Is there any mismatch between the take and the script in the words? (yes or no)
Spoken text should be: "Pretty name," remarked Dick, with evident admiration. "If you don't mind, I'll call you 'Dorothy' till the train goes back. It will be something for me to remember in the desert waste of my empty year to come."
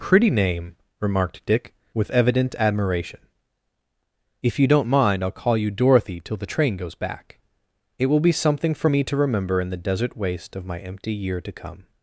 no